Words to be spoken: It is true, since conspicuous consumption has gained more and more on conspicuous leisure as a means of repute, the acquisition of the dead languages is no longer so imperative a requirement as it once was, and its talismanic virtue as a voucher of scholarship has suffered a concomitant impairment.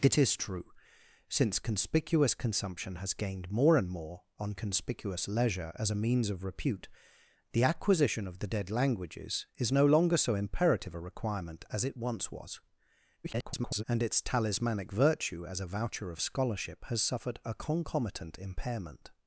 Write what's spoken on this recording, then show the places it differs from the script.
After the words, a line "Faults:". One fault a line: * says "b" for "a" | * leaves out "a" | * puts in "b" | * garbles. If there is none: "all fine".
It is true, since conspicuous consumption has gained more and more on conspicuous leisure as a means of repute, the acquisition of the dead languages is no longer so imperative a requirement as it once was, [garbled] and its talismanic virtue as a voucher of scholarship has suffered a concomitant impairment.
Faults:
* garbles